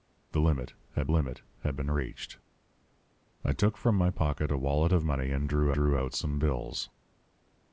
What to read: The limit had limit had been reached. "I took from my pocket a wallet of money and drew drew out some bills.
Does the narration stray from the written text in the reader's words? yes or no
no